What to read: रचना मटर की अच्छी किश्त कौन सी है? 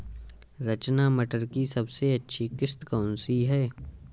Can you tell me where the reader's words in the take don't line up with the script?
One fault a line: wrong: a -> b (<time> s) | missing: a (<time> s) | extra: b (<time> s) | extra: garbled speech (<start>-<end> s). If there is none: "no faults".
extra: सबसे (1.6 s)